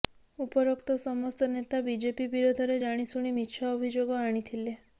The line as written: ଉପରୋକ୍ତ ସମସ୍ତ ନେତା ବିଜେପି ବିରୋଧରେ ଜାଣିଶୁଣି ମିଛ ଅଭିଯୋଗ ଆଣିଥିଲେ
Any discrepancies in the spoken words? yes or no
no